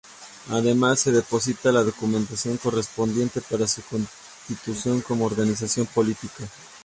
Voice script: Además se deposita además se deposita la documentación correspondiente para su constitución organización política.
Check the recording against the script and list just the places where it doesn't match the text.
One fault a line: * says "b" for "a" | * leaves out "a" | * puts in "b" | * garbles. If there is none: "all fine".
* leaves out "además se deposita"
* puts in "como"